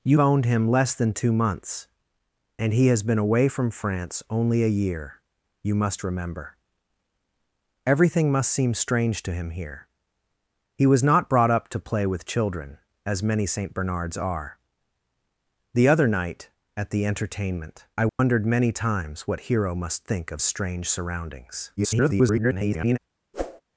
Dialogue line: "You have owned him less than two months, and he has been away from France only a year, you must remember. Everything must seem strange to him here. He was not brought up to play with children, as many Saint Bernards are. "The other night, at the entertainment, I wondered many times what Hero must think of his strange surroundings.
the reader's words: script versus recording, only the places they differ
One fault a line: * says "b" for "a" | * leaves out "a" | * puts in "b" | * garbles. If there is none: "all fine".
* leaves out "have"
* leaves out "his"
* garbles